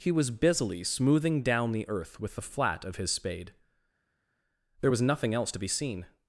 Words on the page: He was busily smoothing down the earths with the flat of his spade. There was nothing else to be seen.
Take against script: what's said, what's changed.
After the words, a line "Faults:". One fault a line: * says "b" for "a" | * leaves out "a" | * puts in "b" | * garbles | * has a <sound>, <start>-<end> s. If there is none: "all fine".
He was busily smoothing down the earth with the flat of his spade. There was nothing else to be seen.
Faults:
* says "earth" for "earths"